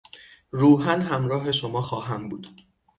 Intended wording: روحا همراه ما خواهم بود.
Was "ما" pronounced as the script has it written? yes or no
no